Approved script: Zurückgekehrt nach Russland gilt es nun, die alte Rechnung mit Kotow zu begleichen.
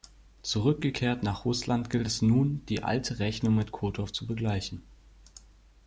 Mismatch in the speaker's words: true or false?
false